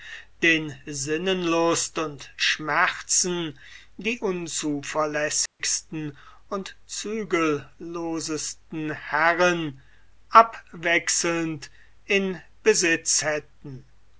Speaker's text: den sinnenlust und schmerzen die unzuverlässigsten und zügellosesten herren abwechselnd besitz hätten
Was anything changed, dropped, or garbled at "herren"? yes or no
no